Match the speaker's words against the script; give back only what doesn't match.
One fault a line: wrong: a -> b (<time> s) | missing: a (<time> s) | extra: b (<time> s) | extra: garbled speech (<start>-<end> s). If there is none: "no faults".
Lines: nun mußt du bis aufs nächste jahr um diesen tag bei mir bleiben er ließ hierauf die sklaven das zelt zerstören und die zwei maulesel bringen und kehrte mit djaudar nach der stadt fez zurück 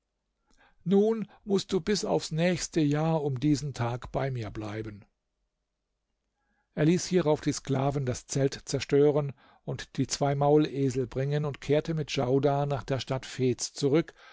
no faults